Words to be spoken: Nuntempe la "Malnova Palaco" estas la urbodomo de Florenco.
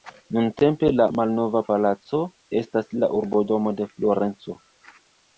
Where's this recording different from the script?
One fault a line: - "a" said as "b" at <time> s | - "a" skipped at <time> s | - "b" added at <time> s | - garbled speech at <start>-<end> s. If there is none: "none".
none